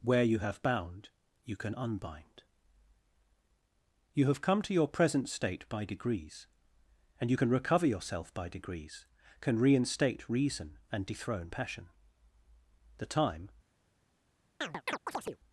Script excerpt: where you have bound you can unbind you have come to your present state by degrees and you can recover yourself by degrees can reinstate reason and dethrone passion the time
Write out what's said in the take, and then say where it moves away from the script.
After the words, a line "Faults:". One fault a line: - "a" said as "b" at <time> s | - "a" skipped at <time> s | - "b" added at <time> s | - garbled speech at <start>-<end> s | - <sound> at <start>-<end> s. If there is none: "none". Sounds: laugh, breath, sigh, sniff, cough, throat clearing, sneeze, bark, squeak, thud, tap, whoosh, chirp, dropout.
where you have bound you can unbind you have come to your present state by degrees and you can recover yourself by degrees can reinstate reason and dethrone passion the time
Faults:
- chirp at 14.6-15.4 s